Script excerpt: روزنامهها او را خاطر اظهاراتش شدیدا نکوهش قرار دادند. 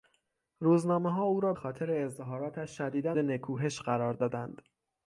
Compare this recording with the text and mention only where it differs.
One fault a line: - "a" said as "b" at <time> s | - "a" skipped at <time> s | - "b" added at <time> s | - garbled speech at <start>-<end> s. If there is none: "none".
none